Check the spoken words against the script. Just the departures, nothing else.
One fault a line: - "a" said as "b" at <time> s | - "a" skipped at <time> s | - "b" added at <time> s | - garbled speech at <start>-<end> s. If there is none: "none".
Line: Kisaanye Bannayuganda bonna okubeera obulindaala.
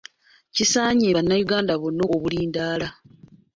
- "okubeera" skipped at 2.0 s